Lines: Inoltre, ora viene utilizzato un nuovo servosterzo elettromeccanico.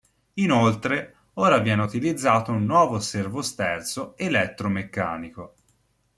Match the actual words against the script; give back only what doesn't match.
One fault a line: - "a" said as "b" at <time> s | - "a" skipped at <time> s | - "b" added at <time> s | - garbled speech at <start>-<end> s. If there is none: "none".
none